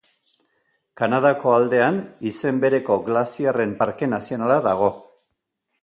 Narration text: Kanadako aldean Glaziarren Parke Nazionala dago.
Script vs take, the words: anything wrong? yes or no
yes